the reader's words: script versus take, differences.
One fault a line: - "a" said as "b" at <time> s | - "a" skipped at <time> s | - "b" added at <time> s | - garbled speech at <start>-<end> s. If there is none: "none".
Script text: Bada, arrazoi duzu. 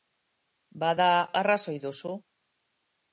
none